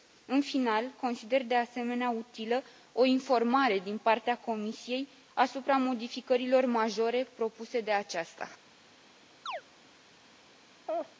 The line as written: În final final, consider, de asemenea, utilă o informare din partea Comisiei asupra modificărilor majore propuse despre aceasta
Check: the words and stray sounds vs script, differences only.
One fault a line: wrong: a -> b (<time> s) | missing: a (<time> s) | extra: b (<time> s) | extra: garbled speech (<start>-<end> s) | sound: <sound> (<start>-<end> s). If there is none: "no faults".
missing: final (0.9 s)
wrong: despre -> de (7.8 s)
sound: chirp (9.5-9.6 s)
sound: laugh (10.9-11.2 s)